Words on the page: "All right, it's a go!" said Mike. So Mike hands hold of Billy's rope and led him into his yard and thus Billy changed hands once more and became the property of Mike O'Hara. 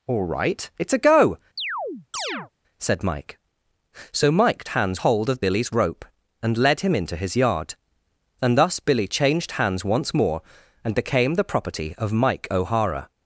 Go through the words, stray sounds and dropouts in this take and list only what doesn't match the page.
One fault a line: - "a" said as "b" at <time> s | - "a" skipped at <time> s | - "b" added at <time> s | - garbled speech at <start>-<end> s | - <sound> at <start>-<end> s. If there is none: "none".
- chirp at 1.6-2.5 s